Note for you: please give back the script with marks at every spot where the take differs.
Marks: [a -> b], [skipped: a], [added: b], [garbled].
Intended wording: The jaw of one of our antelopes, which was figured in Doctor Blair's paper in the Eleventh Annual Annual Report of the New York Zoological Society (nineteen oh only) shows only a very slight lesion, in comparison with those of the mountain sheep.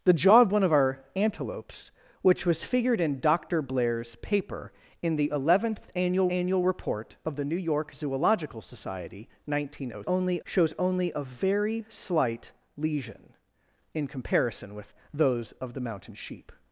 The jaw of one of our antelopes, which was figured in Doctor Blair's paper in the Eleventh Annual Annual Report of the New York Zoological Society (nineteen oh only) shows only a very slight lesion, in comparison with those of the mountain sheep.